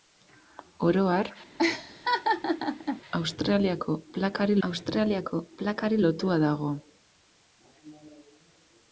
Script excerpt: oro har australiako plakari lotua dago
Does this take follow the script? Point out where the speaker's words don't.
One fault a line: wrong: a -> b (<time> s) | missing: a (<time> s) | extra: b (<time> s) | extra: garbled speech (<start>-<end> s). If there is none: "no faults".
extra: australiako plakari (4.7 s)